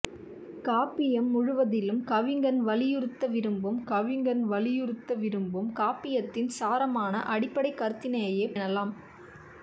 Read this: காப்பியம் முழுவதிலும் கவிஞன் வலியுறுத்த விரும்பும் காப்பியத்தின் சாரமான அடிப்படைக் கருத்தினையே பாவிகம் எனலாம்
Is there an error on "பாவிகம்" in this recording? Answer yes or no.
yes